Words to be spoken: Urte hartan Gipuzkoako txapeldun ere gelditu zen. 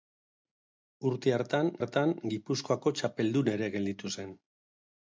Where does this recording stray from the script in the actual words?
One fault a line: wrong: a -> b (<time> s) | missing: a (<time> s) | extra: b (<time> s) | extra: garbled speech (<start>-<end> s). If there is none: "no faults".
extra: hartan (1.8 s)